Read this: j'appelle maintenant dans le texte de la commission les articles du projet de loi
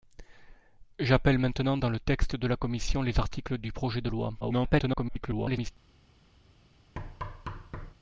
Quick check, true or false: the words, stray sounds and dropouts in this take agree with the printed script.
false